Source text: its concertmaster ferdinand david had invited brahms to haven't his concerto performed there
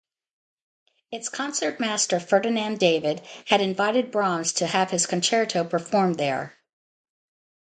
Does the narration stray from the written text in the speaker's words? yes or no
yes